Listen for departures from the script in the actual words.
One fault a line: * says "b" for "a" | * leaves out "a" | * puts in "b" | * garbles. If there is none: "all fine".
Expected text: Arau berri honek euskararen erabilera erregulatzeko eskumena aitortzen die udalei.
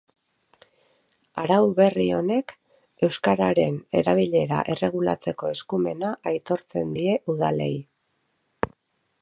all fine